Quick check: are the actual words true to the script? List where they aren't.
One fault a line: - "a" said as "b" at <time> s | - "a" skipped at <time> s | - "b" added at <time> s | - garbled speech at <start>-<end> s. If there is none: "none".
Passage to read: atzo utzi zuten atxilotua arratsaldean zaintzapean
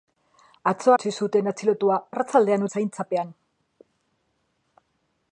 none